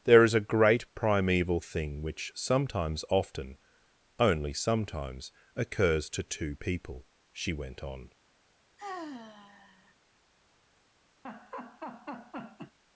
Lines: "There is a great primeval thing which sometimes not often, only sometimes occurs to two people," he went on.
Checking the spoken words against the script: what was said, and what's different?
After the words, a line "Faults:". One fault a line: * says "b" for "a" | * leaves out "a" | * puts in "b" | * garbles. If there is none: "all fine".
"There is a great primeval thing which sometimes often, only sometimes occurs to two people," she went on.
Faults:
* leaves out "not"
* says "she" for "he"